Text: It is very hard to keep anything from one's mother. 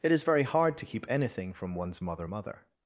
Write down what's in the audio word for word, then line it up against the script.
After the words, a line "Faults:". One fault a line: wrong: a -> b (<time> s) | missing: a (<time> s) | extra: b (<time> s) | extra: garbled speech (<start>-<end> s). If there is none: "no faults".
It is very hard to keep anything from one's mother mother.
Faults:
extra: mother (2.2 s)